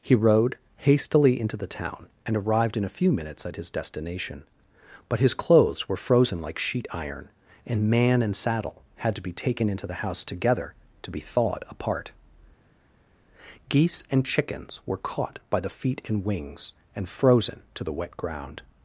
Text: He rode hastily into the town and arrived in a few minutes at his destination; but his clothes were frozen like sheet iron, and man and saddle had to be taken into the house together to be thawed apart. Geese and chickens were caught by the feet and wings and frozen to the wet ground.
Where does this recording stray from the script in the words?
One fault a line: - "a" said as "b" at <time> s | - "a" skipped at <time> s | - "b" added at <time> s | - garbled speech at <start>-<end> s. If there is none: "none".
none